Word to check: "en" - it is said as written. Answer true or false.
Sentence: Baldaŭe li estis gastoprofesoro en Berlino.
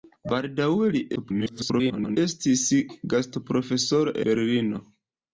false